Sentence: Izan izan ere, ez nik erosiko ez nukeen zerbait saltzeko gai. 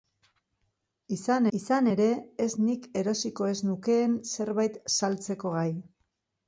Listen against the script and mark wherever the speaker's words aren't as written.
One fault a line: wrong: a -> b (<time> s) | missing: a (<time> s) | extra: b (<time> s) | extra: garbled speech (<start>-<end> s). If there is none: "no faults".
no faults